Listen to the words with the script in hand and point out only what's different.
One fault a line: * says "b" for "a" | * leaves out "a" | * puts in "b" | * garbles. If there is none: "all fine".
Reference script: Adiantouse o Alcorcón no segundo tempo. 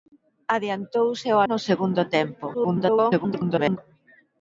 * leaves out "Alcorcón"
* garbles